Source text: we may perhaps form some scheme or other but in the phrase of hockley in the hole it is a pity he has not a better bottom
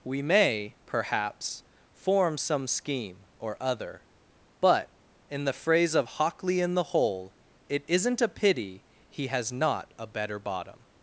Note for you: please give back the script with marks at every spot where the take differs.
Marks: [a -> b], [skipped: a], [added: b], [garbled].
we may perhaps form some scheme or other but in the phrase of hockley in the hole it [is -> isn't] a pity he has not a better bottom